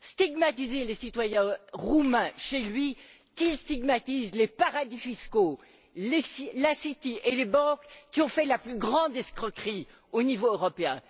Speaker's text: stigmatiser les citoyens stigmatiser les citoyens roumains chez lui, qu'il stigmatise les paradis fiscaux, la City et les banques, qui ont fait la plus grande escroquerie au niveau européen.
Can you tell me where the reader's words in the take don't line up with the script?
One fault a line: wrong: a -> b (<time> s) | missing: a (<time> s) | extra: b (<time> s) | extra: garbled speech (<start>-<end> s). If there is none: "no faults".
missing: stigmatiser les citoyens (1.6 s)